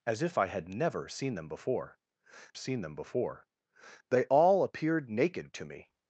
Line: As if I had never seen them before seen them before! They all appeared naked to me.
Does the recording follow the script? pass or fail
pass